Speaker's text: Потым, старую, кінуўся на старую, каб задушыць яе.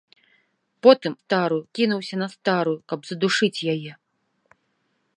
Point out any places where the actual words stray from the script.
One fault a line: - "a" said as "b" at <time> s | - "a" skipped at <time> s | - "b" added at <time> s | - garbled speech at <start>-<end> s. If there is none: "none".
none